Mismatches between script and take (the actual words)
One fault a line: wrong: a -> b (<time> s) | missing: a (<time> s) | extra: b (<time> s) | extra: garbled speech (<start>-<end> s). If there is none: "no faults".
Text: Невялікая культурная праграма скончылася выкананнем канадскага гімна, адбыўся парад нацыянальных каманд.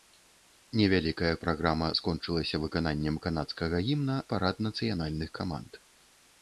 missing: культурная (1.3 s)
missing: адбыўся (4.2 s)